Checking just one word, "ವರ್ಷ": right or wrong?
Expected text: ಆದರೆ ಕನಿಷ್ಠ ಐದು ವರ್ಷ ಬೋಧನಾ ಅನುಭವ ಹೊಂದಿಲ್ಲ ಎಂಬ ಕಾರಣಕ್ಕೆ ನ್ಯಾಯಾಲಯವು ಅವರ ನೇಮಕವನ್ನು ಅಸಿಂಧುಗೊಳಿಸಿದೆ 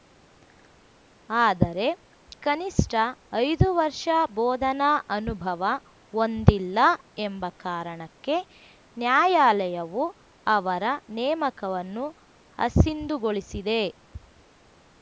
right